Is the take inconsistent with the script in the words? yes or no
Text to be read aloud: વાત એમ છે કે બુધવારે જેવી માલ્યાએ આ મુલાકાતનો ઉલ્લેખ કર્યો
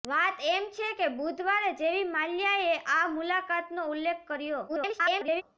yes